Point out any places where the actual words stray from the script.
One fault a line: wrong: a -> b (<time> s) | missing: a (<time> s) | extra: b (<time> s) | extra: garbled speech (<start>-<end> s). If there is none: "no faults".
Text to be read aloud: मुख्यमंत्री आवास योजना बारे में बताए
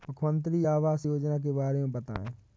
extra: के (1.4 s)